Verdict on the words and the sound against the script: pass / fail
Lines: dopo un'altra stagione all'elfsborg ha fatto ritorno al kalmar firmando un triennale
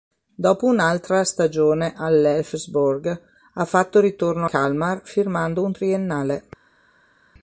fail